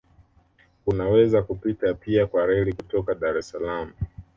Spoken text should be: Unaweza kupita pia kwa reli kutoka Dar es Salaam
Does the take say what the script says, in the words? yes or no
yes